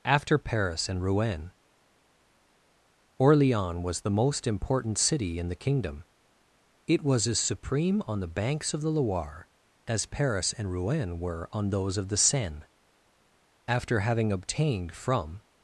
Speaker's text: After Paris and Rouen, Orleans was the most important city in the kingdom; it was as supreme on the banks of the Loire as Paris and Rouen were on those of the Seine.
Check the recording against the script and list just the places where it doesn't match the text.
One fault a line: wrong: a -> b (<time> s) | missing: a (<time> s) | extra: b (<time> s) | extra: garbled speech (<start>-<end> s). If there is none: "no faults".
extra: After having obtained from (13.7 s)